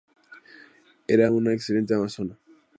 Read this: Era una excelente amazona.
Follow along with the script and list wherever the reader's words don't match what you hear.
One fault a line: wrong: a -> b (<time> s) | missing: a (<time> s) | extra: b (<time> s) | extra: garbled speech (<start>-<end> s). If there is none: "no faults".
no faults